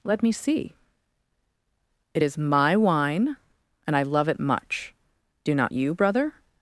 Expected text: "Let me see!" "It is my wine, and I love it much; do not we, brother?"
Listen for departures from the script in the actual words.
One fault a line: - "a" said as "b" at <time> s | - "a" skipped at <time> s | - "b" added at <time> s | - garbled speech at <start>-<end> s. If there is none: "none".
- "we" said as "you" at 5.7 s